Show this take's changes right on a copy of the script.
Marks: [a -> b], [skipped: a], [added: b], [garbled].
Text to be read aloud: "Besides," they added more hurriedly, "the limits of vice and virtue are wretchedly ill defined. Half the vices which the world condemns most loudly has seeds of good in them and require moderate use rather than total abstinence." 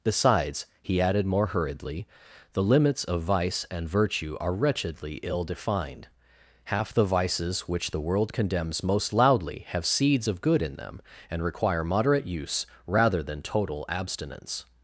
"Besides," [they -> he] added more hurriedly, "the limits of vice and virtue are wretchedly ill defined. Half the vices which the world condemns most loudly [has -> have] seeds of good in them and require moderate use rather than total abstinence."